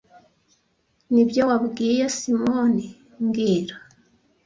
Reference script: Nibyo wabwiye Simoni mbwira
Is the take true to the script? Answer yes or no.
yes